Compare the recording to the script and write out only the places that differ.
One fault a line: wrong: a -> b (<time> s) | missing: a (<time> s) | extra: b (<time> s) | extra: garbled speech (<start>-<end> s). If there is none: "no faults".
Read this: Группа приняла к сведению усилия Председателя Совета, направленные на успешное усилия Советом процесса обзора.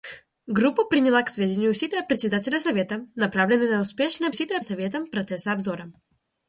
no faults